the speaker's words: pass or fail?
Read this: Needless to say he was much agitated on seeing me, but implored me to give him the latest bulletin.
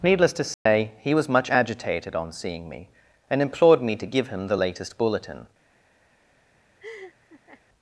fail